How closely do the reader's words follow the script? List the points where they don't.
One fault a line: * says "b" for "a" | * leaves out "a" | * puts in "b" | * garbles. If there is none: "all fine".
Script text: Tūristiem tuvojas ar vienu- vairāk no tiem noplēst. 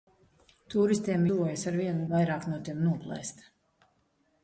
all fine